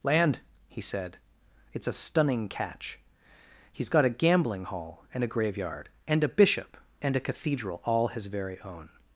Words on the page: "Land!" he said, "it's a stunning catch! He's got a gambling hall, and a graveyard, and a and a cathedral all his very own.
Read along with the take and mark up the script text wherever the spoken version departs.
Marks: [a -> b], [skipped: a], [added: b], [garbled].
"Land!" he said, "it's a stunning catch! He's got a gambling hall, and a graveyard, and a [added: bishop] and a cathedral all his very own.